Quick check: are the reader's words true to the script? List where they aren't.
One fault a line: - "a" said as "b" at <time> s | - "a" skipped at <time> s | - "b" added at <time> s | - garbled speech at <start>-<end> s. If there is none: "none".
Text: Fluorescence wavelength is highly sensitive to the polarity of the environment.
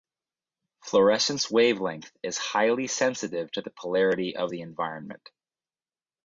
none